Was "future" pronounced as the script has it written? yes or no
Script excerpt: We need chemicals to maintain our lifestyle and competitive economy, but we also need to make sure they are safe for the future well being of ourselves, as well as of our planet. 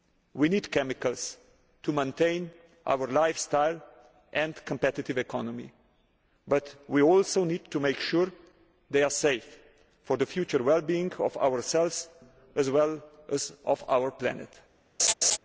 yes